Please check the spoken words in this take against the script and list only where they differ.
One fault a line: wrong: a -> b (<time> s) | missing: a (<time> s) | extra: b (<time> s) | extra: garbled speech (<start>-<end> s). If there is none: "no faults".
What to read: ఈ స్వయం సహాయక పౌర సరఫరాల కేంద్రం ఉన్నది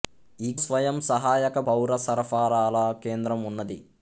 no faults